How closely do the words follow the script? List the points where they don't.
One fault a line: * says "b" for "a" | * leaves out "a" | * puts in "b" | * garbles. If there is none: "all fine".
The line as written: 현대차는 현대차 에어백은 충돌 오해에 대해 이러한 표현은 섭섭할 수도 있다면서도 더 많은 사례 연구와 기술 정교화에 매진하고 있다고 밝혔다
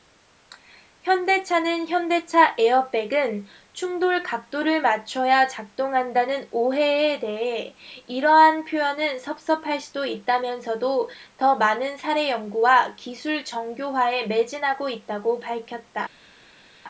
* puts in "각도를 맞춰야 작동한다는"